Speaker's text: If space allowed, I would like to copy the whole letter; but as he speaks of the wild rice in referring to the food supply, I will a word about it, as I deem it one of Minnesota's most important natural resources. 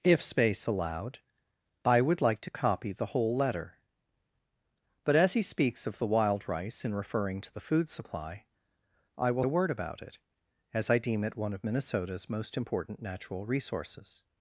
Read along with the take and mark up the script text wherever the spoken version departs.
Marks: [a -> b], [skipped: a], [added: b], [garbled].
If space allowed, I would like to copy the whole letter; but as he speaks of the wild rice in referring to the food supply, I will a word about it, as I deem it one of Minnesota's most important natural resources.